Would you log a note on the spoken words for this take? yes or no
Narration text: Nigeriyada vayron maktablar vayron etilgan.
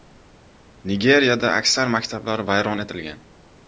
yes